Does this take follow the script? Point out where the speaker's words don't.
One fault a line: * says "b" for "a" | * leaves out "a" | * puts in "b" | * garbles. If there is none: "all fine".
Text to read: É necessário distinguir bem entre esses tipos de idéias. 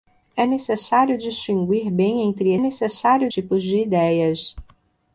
* says "necessário" for "esses"